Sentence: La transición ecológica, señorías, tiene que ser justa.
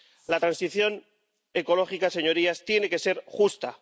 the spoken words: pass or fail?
pass